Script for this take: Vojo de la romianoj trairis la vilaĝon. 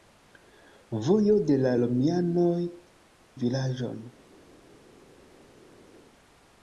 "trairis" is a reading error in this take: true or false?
true